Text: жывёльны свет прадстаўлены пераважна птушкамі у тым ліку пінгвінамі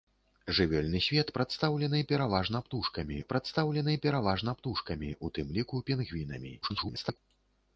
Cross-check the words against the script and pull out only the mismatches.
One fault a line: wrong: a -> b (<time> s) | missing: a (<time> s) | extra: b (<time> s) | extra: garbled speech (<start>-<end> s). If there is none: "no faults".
extra: прадстаўлены пераважна птушкамі (3.3 s)
extra: garbled speech (6.6-7.2 s)